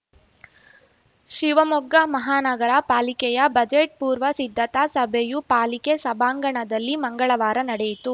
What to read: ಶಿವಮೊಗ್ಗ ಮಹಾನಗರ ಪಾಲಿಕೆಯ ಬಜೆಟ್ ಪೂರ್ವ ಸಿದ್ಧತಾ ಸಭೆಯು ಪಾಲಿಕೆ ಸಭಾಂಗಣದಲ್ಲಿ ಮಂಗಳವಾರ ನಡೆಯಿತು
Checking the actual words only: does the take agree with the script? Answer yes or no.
yes